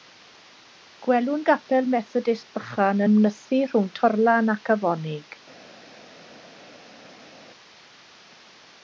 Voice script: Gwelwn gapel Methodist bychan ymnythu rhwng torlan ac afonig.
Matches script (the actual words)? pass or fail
pass